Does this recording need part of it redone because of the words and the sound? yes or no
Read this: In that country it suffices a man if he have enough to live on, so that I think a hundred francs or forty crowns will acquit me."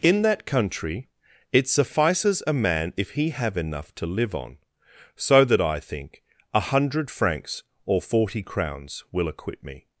no